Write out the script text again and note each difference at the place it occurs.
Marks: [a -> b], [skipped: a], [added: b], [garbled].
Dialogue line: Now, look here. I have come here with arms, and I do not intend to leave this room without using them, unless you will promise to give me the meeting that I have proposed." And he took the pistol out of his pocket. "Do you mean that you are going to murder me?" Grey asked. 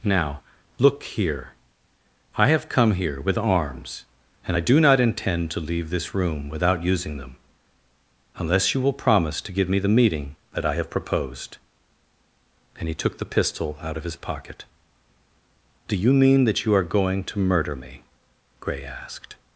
Now, look here. I have come here with arms, and I do not intend to leave this room without using them, unless you will promise to give me the meeting that I have proposed." And he took the pistol out of his pocket. "Do you mean that you are going to murder me?" Grey asked.